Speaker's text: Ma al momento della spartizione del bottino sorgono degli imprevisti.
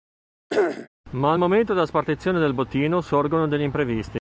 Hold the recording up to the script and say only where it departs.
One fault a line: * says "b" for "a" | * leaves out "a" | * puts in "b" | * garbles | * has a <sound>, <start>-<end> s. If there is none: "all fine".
* has a throat clearing, 0.5-0.9 s